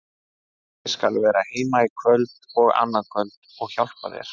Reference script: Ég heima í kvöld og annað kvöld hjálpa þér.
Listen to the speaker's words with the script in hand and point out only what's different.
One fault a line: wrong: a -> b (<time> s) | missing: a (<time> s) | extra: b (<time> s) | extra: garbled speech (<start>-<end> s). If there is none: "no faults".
extra: skal vera (0.9 s)
extra: og (3.7 s)